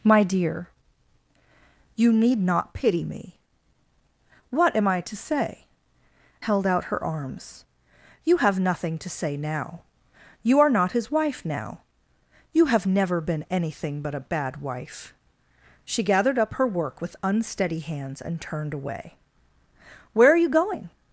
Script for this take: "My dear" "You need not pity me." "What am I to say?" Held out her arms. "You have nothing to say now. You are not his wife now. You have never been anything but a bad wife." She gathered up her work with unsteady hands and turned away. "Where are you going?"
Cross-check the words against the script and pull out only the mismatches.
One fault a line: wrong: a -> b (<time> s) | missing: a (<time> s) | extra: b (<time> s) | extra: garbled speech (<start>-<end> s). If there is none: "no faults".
no faults